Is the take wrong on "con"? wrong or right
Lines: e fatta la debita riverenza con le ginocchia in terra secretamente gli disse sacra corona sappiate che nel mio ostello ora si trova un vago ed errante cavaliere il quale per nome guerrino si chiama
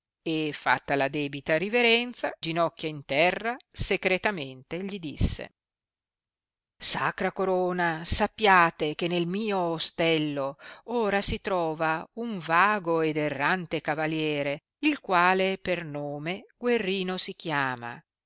wrong